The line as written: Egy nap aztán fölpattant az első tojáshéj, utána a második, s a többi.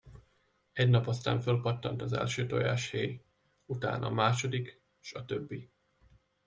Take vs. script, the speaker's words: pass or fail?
pass